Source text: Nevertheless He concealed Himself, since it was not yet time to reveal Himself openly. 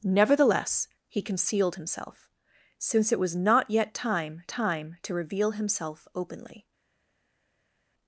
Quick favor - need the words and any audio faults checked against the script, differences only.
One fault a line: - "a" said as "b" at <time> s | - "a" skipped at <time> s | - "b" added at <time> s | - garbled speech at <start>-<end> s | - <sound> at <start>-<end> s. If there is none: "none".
- "time" added at 4.5 s